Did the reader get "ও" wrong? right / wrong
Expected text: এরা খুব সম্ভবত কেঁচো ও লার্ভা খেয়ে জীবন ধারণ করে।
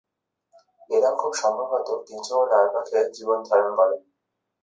right